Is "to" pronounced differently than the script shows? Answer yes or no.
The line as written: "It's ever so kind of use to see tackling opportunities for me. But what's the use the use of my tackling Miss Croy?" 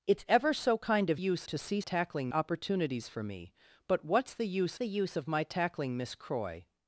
no